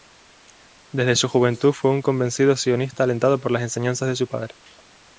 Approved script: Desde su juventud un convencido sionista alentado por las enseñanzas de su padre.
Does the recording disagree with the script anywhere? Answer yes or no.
yes